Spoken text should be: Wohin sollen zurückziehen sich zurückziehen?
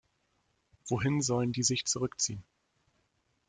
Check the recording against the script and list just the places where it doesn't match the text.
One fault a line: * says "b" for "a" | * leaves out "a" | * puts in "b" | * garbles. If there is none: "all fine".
* says "die" for "zurückziehen"